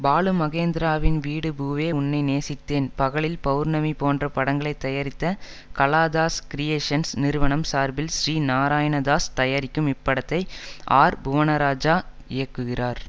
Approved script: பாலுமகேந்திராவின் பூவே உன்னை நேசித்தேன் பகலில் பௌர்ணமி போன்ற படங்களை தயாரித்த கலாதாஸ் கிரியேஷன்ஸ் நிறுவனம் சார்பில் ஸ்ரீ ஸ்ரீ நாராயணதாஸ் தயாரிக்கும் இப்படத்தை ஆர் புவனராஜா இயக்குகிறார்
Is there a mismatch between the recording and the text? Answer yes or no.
yes